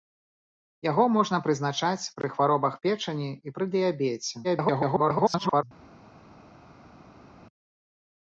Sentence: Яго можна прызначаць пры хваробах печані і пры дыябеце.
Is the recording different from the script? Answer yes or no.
yes